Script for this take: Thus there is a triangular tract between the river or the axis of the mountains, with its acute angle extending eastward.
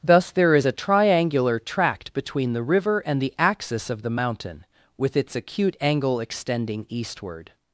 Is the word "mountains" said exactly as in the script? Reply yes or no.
no